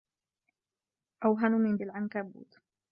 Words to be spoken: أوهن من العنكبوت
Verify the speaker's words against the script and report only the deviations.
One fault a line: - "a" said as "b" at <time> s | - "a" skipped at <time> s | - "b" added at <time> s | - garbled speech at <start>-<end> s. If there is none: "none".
none